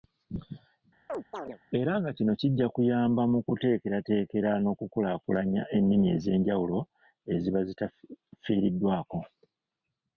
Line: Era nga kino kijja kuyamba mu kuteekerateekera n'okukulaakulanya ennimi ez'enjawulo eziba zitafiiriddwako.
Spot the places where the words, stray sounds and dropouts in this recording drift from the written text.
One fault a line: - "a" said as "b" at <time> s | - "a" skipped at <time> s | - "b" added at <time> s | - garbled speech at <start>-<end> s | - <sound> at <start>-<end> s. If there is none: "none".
- chirp at 1.1-1.6 s